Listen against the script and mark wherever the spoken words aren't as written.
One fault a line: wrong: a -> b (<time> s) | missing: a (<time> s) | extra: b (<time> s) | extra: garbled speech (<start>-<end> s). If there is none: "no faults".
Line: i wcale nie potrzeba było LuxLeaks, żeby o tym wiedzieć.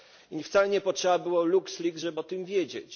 no faults